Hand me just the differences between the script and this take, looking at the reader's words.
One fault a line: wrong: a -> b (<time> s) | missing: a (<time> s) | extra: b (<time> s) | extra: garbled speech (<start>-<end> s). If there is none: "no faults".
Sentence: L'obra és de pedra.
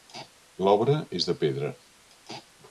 no faults